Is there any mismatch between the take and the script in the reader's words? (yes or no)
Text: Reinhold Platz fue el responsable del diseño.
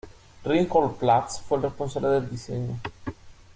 no